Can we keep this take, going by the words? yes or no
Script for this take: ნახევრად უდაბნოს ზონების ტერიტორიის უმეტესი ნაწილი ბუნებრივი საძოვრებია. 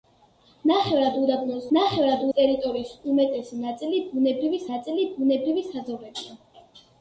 no